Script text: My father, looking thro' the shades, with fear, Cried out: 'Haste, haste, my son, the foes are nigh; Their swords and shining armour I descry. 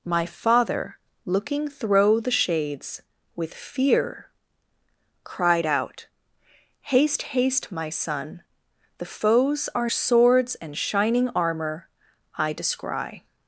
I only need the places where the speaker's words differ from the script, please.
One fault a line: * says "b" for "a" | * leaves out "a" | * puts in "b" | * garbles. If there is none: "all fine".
* leaves out "nigh Their"